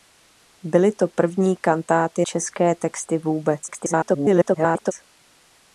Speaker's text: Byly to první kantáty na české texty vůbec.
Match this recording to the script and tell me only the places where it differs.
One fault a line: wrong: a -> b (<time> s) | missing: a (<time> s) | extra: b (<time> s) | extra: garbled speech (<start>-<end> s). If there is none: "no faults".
missing: na (2.2 s)
extra: garbled speech (3.7-4.9 s)